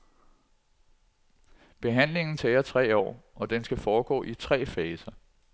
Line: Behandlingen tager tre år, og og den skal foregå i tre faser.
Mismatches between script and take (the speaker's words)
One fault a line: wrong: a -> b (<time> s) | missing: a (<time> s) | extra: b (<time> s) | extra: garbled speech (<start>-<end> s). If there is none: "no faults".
missing: og (3.5 s)